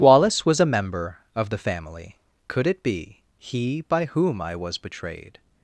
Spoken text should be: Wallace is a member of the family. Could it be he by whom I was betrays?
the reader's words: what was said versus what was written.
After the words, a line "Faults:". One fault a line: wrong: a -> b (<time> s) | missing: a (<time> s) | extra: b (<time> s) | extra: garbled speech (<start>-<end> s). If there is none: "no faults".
Wallace was a member of the family. Could it be he by whom I was betrayed?
Faults:
wrong: is -> was (0.5 s)
wrong: betrays -> betrayed (4.8 s)